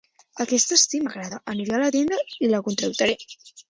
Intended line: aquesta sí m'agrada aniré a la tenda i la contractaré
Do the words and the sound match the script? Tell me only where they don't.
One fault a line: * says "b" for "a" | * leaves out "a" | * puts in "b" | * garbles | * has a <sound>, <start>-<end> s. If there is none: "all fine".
all fine